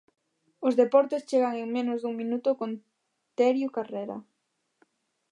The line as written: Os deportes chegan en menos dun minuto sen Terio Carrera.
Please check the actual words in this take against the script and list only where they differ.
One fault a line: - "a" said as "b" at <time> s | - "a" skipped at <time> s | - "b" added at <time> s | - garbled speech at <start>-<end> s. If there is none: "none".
- "sen" said as "con" at 2.6 s